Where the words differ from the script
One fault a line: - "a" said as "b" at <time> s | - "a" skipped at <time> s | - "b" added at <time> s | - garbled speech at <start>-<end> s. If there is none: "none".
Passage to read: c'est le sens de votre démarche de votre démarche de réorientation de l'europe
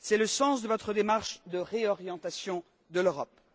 - "votre démarche de" skipped at 1.6 s